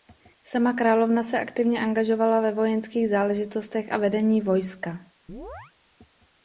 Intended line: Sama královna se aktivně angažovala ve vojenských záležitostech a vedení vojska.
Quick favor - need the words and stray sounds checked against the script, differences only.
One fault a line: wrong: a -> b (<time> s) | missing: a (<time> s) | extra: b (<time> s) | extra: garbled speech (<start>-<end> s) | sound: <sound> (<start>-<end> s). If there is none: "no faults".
sound: chirp (5.3-5.7 s)